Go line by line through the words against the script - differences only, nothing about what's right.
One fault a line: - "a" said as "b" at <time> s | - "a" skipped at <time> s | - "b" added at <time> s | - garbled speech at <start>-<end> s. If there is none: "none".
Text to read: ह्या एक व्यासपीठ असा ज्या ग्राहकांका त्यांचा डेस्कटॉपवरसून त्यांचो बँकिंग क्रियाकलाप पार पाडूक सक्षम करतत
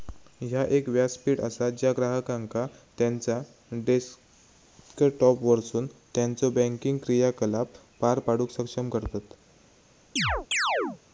none